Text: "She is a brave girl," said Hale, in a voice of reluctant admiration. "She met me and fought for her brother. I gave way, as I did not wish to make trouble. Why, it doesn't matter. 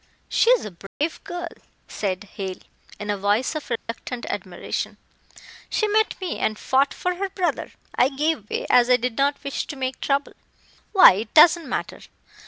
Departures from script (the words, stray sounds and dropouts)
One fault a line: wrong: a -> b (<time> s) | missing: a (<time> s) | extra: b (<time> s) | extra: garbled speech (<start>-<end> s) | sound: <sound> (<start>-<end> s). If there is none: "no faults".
sound: dropout (0.9-1.0 s)
sound: dropout (3.8-3.9 s)